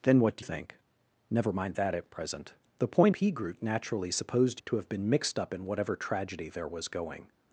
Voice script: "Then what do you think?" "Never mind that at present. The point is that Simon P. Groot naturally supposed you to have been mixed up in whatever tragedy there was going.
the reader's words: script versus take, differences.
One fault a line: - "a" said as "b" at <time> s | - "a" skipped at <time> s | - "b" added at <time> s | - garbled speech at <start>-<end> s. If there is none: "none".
- "you" skipped at 0.5 s
- "is that Simon" skipped at 3.1 s
- "you" skipped at 4.6 s